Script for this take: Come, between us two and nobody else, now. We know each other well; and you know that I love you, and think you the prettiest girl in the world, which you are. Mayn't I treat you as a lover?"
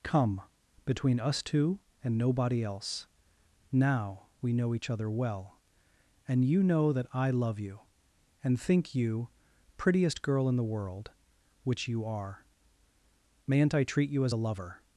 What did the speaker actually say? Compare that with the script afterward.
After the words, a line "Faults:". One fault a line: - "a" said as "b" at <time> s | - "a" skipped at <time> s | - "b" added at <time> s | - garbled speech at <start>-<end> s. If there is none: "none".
Come, between us two and nobody else, now. We know each other well; and you know that I love you, and think you prettiest girl in the world, which you are. Mayn't I treat you as a lover?"
Faults:
- "the" skipped at 9.3 s